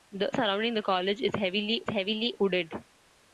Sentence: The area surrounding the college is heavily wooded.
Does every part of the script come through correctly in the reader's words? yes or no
no